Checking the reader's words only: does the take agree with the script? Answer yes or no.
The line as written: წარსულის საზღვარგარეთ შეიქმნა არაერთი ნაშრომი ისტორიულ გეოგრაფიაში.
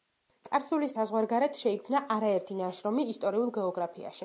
yes